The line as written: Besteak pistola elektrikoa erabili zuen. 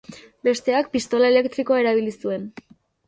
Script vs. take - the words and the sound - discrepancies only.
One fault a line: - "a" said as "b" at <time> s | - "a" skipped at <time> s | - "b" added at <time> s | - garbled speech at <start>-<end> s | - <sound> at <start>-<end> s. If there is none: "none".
none